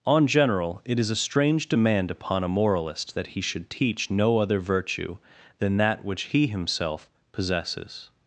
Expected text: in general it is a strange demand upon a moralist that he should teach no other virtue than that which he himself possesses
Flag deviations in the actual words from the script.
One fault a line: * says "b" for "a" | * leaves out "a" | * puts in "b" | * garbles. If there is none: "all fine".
* says "on" for "in"